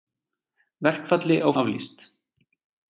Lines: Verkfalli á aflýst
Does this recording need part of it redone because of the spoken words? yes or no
no